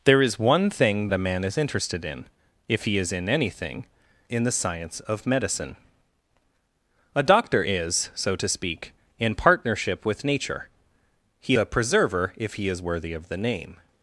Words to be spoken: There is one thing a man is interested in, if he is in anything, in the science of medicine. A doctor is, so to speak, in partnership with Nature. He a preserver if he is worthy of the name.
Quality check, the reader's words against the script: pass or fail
pass